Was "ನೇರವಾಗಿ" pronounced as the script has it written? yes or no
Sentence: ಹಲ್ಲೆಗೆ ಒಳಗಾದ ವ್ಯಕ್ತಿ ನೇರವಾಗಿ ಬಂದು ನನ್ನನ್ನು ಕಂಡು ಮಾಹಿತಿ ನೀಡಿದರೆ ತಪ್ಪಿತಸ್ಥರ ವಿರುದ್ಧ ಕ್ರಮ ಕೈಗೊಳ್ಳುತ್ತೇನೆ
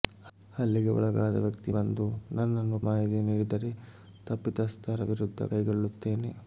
no